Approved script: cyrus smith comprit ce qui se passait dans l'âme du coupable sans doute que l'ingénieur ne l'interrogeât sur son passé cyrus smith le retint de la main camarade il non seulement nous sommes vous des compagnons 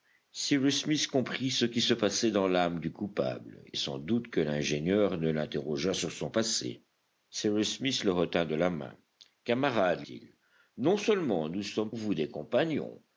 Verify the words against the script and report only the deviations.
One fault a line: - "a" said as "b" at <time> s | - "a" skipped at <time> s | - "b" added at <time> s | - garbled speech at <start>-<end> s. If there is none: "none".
none